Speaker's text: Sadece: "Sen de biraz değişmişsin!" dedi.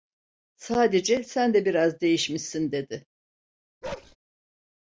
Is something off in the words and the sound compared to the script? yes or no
yes